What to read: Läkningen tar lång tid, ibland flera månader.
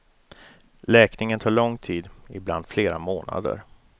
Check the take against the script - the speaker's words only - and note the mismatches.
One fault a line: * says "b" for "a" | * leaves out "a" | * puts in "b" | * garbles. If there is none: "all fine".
all fine